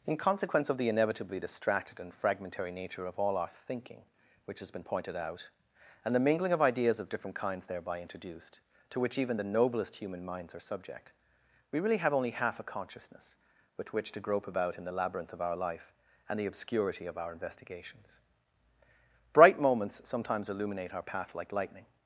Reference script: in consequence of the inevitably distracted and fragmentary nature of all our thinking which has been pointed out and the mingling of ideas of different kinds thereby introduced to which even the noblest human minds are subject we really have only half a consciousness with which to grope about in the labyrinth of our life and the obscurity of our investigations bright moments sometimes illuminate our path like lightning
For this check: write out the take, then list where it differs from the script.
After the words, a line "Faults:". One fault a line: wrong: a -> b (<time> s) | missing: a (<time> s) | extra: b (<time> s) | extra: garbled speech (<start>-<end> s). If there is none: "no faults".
in consequence of the inevitably distracted and fragmentary nature of all our thinking which has been pointed out and the mingling of ideas of different kinds thereby introduced to which even the noblest human minds are subject we really have only half a consciousness with which to grope about in the labyrinth of our life and the obscurity of our investigations bright moments sometimes illuminate our path like lightning
Faults:
no faults